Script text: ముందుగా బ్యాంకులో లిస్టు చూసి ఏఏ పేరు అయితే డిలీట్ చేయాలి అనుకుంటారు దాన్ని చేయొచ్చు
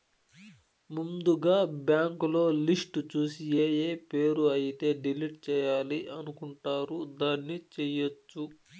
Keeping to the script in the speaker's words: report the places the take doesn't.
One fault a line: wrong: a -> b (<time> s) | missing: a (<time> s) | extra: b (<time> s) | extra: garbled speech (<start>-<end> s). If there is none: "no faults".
no faults